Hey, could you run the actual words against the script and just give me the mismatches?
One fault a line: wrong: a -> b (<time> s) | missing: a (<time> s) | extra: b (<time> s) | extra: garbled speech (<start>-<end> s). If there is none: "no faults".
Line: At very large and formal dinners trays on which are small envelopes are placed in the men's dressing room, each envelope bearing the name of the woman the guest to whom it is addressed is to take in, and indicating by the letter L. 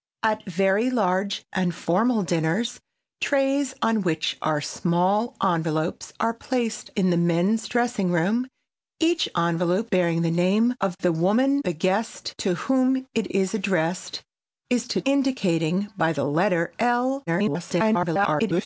missing: take in and (15.0 s)
extra: garbled speech (17.3-18.7 s)